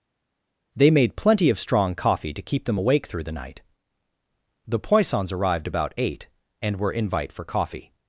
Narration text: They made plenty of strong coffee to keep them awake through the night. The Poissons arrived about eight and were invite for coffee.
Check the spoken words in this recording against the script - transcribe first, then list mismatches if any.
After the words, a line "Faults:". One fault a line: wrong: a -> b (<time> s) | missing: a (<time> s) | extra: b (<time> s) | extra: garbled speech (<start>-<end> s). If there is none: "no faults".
They made plenty of strong coffee to keep them awake through the night. The Poissons arrived about eight and were invite for coffee.
Faults:
no faults